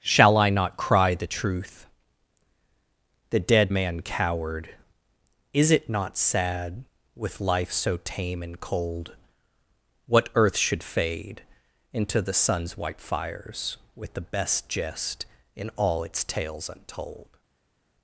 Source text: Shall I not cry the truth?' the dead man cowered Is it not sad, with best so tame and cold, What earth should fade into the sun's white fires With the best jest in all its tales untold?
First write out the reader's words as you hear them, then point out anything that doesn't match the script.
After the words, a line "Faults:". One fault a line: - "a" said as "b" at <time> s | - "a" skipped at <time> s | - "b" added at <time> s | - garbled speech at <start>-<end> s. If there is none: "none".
Shall I not cry the truth?' the dead man cowered Is it not sad, with life so tame and cold, What earth should fade into the sun's white fires With the best jest in all its tales untold?
Faults:
- "best" said as "life" at 7.4 s